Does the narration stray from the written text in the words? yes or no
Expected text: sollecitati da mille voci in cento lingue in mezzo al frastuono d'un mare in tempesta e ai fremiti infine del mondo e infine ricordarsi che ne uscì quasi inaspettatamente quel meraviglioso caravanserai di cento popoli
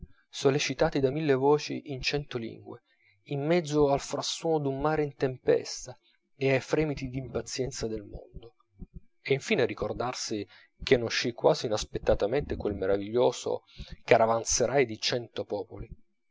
yes